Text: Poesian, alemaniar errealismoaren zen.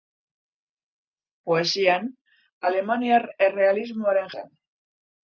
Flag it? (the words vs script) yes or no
no